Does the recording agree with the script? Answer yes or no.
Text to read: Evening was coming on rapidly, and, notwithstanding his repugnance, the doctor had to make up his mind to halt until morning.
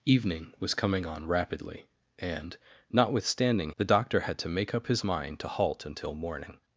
no